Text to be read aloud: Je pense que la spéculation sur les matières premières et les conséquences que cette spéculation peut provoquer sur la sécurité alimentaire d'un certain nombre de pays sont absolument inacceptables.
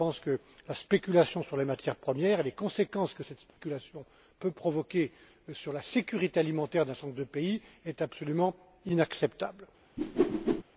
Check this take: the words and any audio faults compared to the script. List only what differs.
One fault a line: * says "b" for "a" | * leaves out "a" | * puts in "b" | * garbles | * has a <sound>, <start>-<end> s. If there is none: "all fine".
* has a dropout, 3.5-3.6 s
* has a whoosh, 10.0-10.6 s